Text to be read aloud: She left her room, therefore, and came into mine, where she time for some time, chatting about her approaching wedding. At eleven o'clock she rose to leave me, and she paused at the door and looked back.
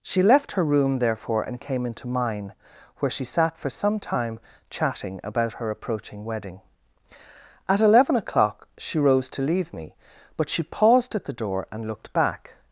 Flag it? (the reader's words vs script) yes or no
yes